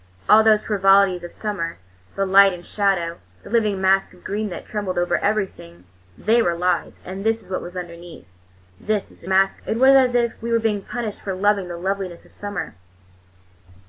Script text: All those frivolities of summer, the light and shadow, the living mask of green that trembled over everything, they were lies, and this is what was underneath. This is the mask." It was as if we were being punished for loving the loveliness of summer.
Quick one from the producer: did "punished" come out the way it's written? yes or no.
yes